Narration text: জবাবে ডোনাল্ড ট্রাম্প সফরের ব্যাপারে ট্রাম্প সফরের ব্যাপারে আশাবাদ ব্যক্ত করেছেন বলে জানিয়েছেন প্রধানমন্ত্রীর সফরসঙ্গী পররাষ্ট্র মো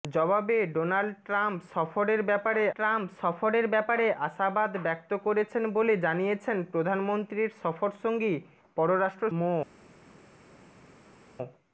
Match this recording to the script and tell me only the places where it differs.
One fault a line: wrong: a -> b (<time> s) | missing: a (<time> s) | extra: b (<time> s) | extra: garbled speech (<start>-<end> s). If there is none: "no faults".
no faults